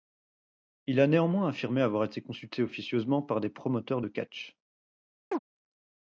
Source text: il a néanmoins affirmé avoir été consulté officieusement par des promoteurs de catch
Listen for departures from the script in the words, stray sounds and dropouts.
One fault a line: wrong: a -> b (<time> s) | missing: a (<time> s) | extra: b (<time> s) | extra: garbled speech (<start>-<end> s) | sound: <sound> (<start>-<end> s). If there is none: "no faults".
sound: chirp (5.3-5.4 s)